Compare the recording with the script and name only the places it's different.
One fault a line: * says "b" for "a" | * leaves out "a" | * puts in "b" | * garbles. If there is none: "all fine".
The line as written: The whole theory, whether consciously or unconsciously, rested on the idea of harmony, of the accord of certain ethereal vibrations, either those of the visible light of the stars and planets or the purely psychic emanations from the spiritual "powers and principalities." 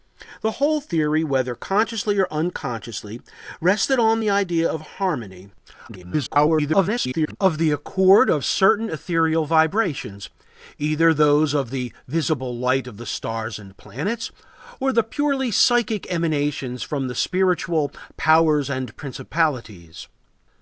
* garbles